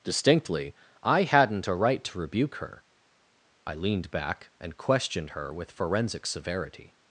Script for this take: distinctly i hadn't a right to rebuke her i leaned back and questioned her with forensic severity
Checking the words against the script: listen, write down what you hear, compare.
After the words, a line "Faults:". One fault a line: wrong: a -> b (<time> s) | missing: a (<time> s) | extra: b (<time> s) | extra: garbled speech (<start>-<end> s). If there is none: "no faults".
distinctly i hadn't a right to rebuke her i leaned back and questioned her with forensic severity
Faults:
no faults